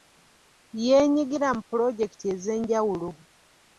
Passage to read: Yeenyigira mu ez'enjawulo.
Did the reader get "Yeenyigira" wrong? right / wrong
right